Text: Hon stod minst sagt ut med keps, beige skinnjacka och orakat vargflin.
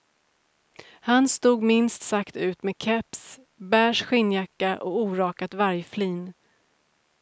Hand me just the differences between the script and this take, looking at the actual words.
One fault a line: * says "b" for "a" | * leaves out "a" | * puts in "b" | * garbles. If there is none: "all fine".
* says "Han" for "Hon"